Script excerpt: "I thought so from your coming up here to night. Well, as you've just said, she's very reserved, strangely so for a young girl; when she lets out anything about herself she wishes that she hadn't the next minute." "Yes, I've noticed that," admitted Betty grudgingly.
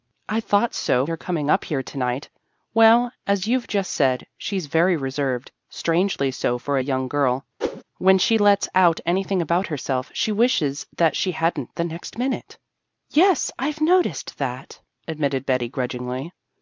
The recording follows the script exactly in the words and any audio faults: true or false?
false